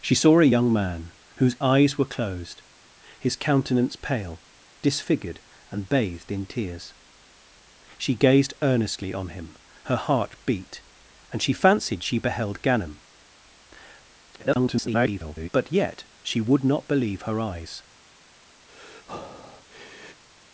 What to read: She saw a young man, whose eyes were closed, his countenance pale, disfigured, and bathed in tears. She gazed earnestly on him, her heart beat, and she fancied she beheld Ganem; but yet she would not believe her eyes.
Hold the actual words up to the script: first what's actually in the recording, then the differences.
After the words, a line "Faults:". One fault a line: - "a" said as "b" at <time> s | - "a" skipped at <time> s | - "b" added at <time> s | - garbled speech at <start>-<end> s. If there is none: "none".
She saw a young man, whose eyes were closed, his countenance pale, disfigured, and bathed in tears. She gazed earnestly on him, her heart beat, and she fancied she beheld Ganem; [garbled] but yet she would not believe her eyes.
Faults:
- garbled speech at 14.3-15.5 s